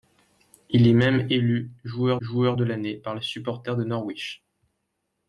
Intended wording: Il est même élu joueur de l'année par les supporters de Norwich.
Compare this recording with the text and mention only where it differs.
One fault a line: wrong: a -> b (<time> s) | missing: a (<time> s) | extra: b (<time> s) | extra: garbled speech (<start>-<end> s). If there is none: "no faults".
extra: joueur (2.2 s)